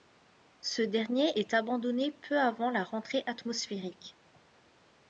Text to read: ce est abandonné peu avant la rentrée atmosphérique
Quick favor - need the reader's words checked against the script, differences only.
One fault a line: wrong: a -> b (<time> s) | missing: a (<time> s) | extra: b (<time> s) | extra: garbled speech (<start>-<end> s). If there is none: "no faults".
extra: dernier (0.8 s)